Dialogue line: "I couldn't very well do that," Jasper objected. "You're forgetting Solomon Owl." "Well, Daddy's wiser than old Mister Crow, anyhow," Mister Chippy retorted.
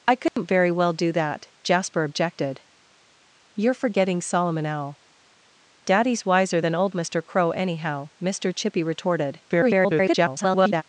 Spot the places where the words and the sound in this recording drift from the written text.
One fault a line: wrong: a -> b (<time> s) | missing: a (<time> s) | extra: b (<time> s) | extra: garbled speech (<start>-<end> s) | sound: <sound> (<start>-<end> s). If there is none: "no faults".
sound: dropout (0.3-0.4 s)
missing: Well (5.0 s)
extra: garbled speech (9.5-10.8 s)